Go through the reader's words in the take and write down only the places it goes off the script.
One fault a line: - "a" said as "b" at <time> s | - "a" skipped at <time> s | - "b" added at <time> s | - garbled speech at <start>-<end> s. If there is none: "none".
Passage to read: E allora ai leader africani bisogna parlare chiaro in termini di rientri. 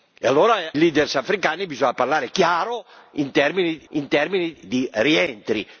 - "ai" skipped at 0.8 s
- "in termini" added at 3.9 s